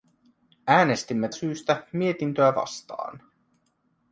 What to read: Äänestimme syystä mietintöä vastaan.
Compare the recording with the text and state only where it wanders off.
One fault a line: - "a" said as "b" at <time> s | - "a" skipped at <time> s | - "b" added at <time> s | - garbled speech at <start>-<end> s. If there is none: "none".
none